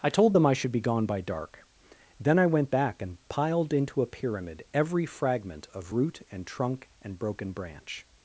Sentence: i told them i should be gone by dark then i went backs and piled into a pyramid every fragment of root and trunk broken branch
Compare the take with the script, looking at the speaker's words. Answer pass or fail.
fail